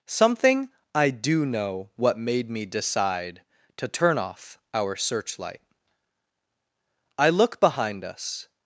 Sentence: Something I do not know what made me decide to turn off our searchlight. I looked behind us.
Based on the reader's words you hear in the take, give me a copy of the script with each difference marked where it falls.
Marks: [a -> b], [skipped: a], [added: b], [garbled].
Something I do [skipped: not] know what made me decide to turn off our searchlight. I [looked -> look] behind us.